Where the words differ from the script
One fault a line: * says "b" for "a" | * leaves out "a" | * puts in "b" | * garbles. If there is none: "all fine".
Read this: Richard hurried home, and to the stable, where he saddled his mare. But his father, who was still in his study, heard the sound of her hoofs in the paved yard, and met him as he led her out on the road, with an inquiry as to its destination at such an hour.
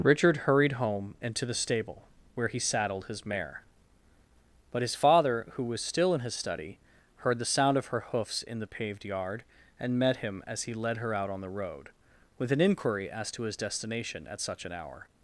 * says "his" for "its"